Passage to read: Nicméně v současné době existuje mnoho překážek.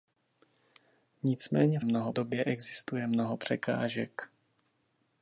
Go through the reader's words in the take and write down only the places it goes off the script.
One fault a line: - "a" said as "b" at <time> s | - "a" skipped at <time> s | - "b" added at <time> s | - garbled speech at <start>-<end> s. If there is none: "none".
- "současné" said as "mnoho" at 1.8 s